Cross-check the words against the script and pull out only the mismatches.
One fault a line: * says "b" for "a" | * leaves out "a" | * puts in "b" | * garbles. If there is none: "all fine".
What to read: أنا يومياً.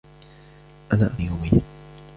all fine